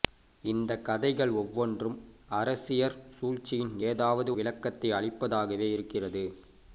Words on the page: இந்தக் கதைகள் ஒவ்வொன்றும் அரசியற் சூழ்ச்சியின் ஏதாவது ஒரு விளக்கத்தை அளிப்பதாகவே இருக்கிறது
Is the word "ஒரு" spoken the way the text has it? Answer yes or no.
no